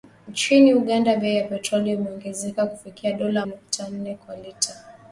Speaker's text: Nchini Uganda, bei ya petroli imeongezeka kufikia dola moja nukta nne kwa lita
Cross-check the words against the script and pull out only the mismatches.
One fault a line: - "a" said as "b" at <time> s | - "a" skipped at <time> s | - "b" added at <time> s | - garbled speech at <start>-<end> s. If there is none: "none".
- "moja" skipped at 3.5 s